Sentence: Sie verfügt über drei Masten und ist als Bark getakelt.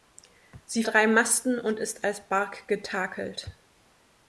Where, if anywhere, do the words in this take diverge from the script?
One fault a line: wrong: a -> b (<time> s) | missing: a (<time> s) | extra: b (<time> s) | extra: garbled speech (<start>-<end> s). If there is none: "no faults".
missing: verfügt über (0.8 s)